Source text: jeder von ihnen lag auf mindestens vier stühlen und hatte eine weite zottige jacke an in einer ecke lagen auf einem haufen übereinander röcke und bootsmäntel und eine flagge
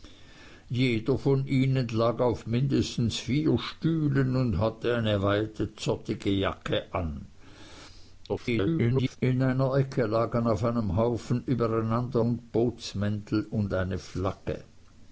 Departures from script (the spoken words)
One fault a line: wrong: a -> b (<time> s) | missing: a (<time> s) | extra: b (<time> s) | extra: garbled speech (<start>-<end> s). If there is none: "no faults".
extra: garbled speech (8.3-9.2 s)
missing: röcke (12.2 s)